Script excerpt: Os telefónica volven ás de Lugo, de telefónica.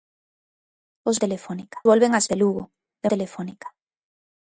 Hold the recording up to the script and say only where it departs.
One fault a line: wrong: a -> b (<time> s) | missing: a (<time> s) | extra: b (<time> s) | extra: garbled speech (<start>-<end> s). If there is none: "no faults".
no faults